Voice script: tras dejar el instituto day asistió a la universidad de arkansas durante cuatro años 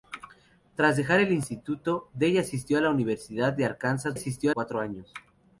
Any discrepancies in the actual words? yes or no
yes